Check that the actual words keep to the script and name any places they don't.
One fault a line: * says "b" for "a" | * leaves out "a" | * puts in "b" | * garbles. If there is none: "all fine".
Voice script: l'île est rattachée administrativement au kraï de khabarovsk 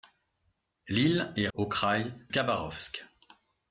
* leaves out "rattachée administrativement"
* leaves out "de"